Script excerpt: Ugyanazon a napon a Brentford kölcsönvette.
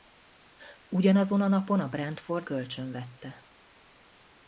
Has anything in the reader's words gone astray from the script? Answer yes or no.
no